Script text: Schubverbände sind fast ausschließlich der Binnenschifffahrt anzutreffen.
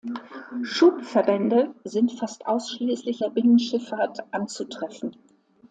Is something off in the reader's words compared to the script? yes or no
no